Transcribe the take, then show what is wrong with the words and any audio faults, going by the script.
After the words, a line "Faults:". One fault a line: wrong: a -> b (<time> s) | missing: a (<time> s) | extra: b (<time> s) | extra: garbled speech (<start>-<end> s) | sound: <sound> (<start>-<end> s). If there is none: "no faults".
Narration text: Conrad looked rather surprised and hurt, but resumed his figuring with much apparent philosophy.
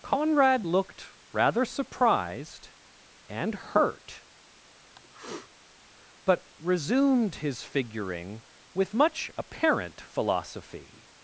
Conrad looked rather surprised and hurt, but resumed his figuring with much apparent philosophy.
Faults:
sound: sniff (5.0-5.5 s)